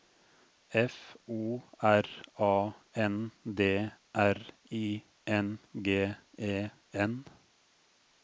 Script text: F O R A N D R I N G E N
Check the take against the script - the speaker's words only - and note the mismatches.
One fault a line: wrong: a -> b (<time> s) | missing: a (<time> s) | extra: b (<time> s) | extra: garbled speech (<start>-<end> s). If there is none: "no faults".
no faults